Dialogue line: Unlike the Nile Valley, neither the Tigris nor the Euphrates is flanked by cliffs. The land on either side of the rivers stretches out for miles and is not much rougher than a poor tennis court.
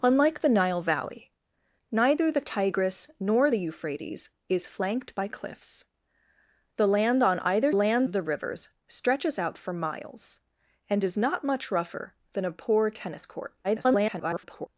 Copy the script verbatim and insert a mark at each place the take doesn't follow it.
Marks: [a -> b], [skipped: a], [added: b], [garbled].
Unlike the Nile Valley, neither the Tigris nor the Euphrates is flanked by cliffs. The land on either [side -> land] of the rivers stretches out for miles and is not much rougher than a poor tennis court. [garbled]